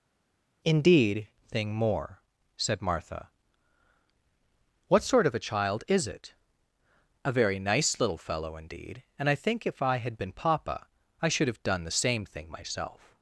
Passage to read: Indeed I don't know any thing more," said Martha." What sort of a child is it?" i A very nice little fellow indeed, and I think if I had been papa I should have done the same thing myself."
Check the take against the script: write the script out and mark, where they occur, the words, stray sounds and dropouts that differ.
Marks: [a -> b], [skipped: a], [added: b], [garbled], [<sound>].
Indeed [skipped: I don't know any] thing more," said Martha." What sort of a child is it?" [skipped: i] A very nice little fellow indeed, and I think if I had been papa I should have done the same thing myself."